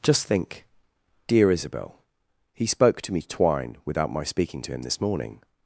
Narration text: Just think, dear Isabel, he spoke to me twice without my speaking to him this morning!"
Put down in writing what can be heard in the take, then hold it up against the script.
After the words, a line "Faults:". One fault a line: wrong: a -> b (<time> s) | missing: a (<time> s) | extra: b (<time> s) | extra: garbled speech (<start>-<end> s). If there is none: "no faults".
Just think, dear Isabel, he spoke to me twine without my speaking to him this morning!"
Faults:
wrong: twice -> twine (3.2 s)